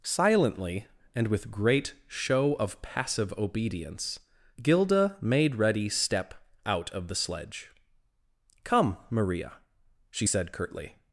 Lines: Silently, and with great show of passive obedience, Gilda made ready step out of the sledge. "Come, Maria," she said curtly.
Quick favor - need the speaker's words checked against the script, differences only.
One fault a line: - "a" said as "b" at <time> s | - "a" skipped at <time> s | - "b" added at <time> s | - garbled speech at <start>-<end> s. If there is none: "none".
none